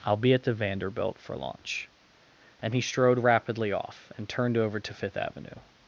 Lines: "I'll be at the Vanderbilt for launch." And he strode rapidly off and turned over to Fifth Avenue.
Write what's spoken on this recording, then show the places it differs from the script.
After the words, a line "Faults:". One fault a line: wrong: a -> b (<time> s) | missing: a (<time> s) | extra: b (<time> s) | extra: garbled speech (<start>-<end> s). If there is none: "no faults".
"I'll be at the Vanderbilt for launch." And he strode rapidly off and turned over to Fifth Avenue.
Faults:
no faults